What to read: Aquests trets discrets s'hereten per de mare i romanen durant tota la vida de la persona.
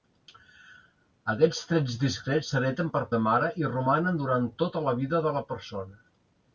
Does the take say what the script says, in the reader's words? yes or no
yes